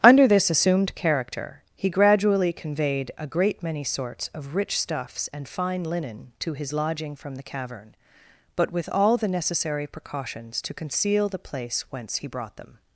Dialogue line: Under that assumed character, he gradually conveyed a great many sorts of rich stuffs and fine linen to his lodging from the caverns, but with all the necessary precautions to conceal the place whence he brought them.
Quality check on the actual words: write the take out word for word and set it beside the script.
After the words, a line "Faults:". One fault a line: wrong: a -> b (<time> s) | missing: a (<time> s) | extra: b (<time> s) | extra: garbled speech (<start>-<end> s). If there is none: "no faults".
Under this assumed character, he gradually conveyed a great many sorts of rich stuffs and fine linen to his lodging from the cavern, but with all the necessary precautions to conceal the place whence he brought them.
Faults:
wrong: that -> this (0.3 s)
wrong: caverns -> cavern (7.4 s)